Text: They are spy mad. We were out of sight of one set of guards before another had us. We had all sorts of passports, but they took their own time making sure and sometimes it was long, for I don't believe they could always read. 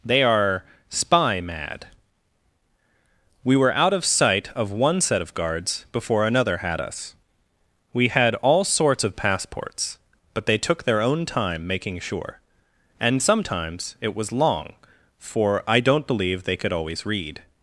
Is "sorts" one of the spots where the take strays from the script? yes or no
no